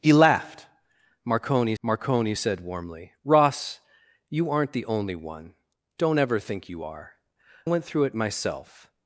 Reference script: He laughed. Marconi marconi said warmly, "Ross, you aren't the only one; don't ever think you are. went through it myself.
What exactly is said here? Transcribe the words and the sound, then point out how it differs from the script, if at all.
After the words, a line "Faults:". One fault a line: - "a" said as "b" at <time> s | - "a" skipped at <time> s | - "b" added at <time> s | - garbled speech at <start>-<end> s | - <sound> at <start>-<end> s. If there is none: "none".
He laughed. Marconi marconi said warmly, "Ross, you aren't the only one; don't ever think you are. went through it myself.
Faults:
none